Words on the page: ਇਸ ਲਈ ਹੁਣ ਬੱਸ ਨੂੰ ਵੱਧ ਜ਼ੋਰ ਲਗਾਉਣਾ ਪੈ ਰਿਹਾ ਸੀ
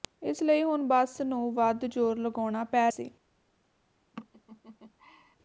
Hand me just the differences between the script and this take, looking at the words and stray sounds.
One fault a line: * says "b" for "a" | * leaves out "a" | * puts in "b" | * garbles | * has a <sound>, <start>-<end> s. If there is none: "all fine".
* leaves out "ਰਿਹਾ"
* has a laugh, 4.1-5.4 s